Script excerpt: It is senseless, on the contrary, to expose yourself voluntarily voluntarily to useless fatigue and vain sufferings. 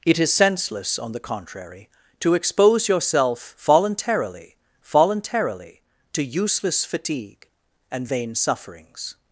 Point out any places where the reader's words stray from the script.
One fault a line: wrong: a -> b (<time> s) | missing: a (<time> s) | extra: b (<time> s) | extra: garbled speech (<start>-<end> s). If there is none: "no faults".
no faults